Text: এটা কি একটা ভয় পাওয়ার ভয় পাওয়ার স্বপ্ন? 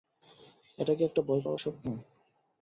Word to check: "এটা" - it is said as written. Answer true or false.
true